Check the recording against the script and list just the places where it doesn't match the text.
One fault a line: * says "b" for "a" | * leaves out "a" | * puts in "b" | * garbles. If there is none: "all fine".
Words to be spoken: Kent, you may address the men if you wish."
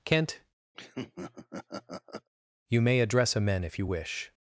* says "a" for "the"